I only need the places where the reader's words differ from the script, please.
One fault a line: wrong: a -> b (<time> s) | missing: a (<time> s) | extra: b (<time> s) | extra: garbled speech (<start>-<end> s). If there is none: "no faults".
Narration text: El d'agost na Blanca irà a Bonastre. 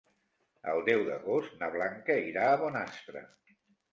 extra: deu (0.9 s)